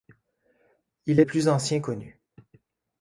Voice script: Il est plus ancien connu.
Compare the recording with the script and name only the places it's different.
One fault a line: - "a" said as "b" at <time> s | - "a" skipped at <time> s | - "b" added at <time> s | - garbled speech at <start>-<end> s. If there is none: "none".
none